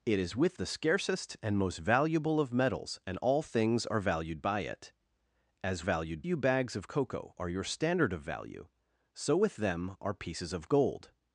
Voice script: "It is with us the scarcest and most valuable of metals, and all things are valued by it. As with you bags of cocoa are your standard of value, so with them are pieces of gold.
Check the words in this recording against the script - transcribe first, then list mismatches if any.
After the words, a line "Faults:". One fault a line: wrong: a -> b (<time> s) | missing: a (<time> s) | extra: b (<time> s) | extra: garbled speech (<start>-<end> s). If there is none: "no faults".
"It is with the scarcest and most valuable of metals, and all things are valued by it. As valued you bags of cocoa are your standard of value, so with them are pieces of gold.
Faults:
missing: us (0.6 s)
wrong: with -> valued (5.8 s)